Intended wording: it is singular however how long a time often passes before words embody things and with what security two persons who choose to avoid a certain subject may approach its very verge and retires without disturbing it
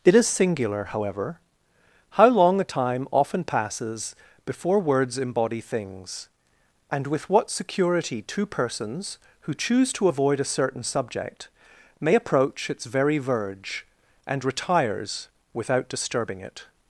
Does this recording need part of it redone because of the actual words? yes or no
no